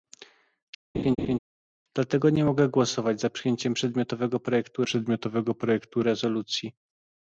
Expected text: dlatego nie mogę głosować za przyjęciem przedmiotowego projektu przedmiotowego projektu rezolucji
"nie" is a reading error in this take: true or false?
false